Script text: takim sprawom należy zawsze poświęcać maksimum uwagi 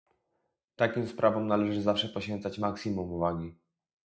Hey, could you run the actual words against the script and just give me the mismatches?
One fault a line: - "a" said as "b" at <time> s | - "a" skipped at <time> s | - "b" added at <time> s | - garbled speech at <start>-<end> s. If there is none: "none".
none